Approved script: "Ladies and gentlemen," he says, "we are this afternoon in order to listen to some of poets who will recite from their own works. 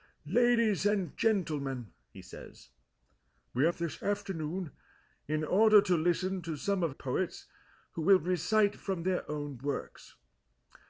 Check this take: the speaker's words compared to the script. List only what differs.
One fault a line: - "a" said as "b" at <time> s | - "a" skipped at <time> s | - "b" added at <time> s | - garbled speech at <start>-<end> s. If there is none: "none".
none